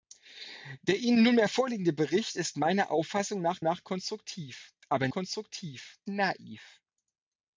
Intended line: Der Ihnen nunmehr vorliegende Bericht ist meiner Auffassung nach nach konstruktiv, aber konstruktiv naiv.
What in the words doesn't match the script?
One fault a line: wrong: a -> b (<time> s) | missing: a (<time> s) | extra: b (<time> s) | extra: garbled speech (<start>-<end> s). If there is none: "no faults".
no faults